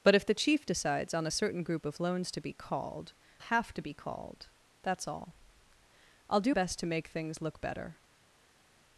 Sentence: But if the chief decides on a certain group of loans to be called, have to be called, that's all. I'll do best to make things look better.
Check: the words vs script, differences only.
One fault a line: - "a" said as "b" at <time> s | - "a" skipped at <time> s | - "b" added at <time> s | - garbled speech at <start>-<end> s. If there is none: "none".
none